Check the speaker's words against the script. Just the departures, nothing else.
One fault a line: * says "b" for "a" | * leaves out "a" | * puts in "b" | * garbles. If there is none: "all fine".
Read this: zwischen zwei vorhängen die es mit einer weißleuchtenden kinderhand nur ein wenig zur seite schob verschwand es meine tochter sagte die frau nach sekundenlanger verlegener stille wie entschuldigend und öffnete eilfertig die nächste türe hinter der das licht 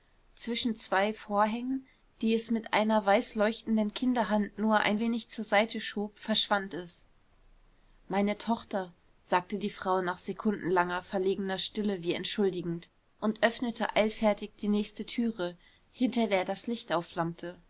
all fine